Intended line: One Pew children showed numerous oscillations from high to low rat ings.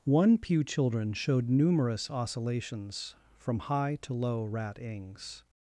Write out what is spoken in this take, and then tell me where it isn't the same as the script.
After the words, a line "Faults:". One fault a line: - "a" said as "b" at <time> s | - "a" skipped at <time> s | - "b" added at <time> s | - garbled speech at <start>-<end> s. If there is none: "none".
One Pew children showed numerous oscillations from high to low rat ings.
Faults:
none